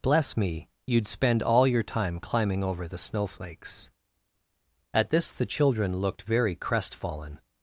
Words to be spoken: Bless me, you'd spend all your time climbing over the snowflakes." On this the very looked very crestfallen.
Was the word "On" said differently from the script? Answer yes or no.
yes